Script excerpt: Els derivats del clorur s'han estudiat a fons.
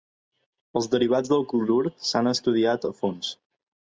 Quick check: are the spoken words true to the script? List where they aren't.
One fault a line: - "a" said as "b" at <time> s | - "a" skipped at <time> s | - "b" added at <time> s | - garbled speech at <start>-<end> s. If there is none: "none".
none